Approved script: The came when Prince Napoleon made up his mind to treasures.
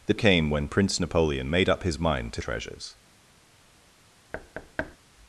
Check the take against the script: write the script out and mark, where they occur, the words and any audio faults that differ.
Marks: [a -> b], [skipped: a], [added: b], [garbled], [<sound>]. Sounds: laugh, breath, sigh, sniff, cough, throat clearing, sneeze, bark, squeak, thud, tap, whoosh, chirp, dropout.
The came when Prince Napoleon made up his mind to treasures. [thud]